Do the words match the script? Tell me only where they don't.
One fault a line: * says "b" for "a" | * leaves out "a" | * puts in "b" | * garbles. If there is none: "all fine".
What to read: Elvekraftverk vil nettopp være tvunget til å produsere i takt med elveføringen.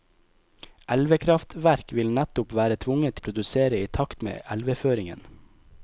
* leaves out "til"